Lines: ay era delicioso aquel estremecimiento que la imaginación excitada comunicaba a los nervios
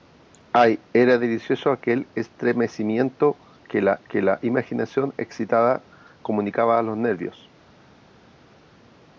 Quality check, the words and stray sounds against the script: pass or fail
fail